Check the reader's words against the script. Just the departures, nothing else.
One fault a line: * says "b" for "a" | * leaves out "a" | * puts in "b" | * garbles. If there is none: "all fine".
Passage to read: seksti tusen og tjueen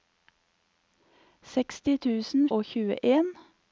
all fine